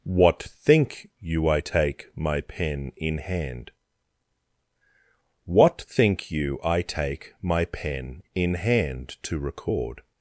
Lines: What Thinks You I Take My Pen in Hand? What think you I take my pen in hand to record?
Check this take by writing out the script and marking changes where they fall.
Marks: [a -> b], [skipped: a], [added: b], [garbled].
What [Thinks -> Think] You I Take My Pen in Hand? What think you I take my pen in hand to record?